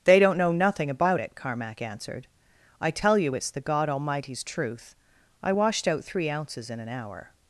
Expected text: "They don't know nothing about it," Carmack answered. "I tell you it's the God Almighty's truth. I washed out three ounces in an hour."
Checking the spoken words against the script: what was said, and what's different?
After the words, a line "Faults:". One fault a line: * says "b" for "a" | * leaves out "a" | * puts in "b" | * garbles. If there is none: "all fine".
"They don't know nothing about it," Carmack answered. "I tell you it's the God Almighty's truth. I washed out three ounces in an hour."
Faults:
all fine